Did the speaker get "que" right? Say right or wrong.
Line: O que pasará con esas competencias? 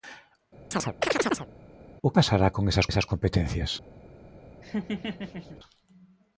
wrong